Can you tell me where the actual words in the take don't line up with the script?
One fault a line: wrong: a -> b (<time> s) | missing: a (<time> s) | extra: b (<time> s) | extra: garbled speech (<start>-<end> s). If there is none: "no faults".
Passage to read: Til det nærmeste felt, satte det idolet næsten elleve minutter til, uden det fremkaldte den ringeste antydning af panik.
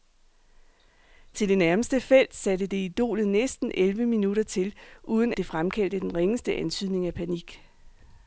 no faults